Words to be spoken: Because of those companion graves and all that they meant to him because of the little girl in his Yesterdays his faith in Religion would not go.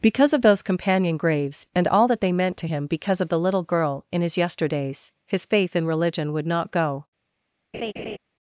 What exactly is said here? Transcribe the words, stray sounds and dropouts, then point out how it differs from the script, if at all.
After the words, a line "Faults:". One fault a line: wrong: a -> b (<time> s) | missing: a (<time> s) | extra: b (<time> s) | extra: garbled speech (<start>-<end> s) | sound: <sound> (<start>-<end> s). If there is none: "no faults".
Because of those companion graves and all that they meant to him because of the little girl in his Yesterdays his faith in Religion would not go.
Faults:
sound: laugh (7.7-8.2 s)